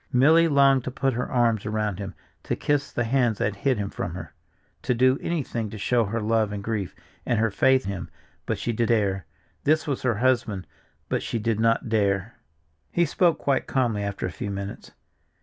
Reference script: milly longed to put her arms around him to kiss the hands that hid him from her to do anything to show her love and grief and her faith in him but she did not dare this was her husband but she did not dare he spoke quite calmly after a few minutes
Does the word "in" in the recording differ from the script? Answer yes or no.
yes